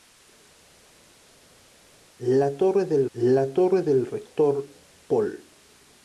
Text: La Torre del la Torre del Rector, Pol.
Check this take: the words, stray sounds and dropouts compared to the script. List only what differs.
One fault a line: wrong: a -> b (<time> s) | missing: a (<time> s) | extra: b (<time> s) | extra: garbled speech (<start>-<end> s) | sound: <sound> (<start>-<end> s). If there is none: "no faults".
no faults